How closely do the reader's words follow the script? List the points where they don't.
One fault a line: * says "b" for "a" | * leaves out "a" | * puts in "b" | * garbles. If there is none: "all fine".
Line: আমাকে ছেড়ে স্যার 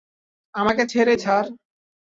all fine